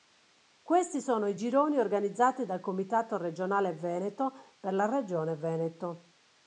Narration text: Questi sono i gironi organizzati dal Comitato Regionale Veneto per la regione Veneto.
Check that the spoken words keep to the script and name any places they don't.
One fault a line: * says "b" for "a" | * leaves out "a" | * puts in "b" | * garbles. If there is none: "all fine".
all fine